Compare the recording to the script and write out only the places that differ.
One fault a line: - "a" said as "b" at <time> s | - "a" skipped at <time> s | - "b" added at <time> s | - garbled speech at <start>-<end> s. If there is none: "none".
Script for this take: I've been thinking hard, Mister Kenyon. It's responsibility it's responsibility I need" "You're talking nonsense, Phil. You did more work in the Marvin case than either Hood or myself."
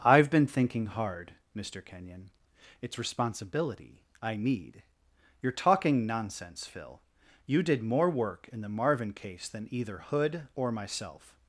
- "it's responsibility" skipped at 4.0 s